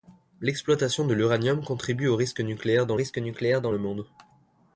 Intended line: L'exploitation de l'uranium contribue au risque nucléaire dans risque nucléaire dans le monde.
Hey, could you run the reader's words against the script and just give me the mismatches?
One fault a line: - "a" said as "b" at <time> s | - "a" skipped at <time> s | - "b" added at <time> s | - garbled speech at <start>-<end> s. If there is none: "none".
none